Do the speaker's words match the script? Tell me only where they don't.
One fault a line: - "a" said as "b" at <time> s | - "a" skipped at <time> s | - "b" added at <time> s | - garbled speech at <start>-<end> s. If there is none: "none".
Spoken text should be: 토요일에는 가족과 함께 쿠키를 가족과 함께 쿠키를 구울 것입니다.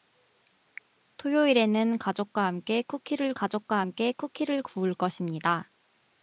none